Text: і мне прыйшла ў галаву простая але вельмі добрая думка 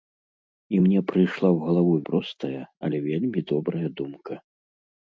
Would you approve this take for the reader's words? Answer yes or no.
yes